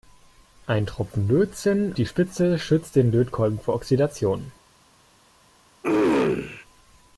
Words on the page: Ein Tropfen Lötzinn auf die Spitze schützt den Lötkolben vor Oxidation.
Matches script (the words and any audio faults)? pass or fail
fail